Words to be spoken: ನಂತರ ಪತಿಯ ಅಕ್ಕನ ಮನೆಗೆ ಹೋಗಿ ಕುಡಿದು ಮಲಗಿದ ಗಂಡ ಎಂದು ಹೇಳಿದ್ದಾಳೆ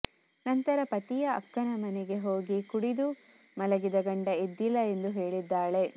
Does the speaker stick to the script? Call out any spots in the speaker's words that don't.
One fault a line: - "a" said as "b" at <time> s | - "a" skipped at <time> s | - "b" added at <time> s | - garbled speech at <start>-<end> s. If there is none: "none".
- "ಎದ್ದಿಲ್ಲ" added at 4.4 s